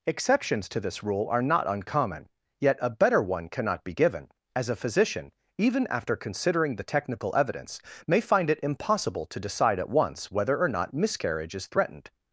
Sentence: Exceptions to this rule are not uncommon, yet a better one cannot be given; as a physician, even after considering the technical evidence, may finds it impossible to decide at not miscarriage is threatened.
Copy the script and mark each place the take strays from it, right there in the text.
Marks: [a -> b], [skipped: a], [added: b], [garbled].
Exceptions to this rule are not uncommon, yet a better one cannot be given; as a physician, even after considering the technical evidence, may [finds -> find] it impossible to decide at [added: once whether or] not miscarriage is threatened.